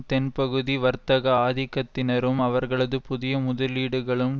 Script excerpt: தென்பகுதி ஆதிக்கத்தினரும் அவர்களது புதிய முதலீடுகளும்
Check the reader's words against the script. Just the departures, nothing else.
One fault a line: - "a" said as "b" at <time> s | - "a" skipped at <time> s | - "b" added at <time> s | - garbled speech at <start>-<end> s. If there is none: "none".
- "வர்த்தக" added at 0.8 s